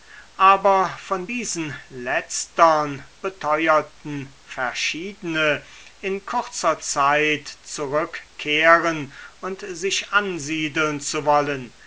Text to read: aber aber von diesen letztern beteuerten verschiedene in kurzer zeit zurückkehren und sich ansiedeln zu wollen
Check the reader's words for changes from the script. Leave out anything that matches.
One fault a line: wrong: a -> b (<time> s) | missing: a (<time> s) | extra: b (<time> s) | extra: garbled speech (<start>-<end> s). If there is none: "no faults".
missing: aber (0.9 s)